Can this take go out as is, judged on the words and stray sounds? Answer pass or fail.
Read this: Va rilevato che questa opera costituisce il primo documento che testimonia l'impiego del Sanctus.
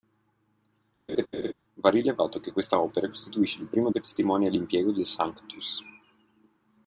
fail